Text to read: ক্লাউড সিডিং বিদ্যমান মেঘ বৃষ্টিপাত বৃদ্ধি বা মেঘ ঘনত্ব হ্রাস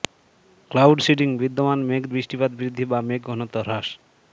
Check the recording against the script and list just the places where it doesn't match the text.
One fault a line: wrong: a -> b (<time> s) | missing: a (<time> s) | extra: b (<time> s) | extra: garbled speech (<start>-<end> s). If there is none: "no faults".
no faults